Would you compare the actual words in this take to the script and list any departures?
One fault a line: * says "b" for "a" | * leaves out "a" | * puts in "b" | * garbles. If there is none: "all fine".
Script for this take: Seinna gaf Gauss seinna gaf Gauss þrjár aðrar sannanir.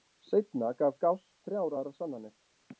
* leaves out "seinna gaf Gauss"